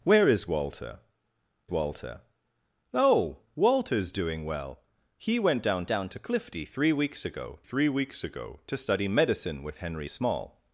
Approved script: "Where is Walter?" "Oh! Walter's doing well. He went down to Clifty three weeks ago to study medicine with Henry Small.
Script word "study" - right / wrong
right